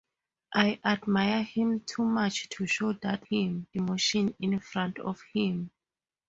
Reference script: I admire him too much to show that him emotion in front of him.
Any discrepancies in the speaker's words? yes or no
no